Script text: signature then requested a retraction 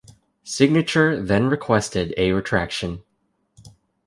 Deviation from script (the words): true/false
false